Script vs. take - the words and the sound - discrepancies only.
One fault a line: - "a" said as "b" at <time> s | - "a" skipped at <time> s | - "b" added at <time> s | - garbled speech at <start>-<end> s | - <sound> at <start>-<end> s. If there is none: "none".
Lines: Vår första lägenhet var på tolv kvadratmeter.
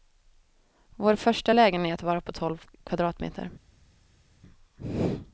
none